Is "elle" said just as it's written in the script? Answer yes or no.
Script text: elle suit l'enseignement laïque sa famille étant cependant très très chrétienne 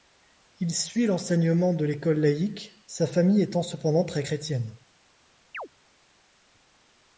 no